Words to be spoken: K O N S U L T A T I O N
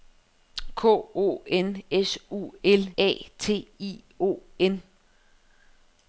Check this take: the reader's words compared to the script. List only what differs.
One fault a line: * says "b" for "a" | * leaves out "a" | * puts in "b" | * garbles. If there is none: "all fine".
* leaves out "T"